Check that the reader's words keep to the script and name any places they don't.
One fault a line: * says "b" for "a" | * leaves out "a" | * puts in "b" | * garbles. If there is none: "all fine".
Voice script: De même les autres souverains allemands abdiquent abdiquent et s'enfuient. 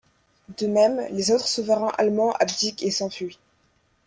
* leaves out "abdiquent"